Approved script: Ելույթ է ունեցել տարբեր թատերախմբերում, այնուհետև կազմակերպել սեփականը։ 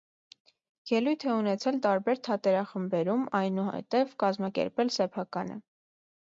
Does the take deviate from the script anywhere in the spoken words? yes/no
no